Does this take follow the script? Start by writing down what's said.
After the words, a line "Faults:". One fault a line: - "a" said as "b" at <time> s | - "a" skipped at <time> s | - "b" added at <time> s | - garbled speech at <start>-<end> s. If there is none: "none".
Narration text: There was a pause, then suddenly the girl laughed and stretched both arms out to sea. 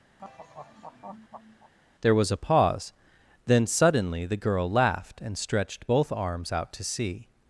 There was a pause, then suddenly the girl laughed and stretched both arms out to sea.
Faults:
none